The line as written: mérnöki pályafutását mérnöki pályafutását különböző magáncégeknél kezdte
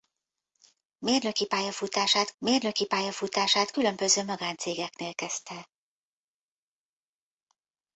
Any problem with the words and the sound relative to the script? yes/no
no